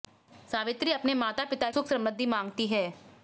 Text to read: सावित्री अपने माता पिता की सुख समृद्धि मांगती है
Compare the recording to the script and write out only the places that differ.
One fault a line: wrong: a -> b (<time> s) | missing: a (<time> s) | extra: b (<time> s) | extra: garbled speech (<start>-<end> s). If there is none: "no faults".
missing: की (1.7 s)